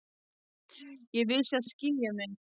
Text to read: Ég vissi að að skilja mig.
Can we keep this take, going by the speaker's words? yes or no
yes